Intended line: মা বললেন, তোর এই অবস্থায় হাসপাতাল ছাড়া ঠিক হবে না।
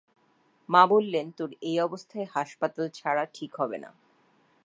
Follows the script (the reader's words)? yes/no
yes